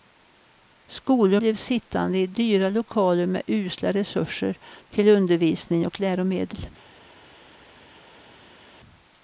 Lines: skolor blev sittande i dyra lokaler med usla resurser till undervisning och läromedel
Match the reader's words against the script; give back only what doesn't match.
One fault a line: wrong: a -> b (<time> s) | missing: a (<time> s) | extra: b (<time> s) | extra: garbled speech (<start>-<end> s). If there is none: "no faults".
no faults